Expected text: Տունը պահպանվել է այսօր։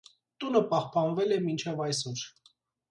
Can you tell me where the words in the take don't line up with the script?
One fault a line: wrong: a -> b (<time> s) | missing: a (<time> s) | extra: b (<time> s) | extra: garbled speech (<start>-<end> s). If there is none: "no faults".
extra: մինչև (1.5 s)